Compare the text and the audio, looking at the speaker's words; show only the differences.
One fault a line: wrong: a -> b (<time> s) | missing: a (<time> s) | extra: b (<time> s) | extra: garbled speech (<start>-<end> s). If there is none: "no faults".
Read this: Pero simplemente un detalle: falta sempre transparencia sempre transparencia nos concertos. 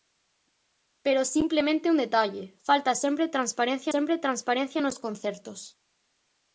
no faults